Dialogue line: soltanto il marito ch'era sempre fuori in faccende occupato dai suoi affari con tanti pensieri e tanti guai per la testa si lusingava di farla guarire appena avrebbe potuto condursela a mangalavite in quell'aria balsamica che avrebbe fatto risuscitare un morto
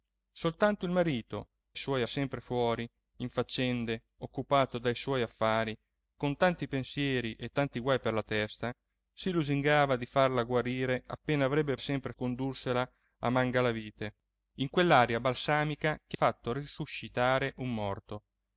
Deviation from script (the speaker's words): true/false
true